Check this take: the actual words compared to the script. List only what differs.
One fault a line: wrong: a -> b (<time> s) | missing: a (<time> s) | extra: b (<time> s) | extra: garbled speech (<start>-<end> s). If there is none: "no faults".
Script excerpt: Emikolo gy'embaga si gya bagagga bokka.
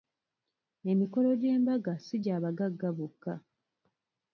no faults